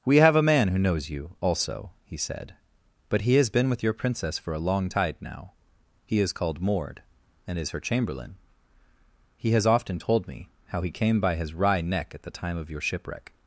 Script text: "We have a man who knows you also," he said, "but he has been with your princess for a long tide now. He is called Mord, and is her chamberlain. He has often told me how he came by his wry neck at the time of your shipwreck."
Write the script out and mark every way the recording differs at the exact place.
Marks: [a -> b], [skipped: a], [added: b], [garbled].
"We have a man who knows you also," he said, "but he has been with your princess for a long tide now. He is called Mord, and is her chamberlain. He has often told me how he came by his wry neck at the time of your shipwreck."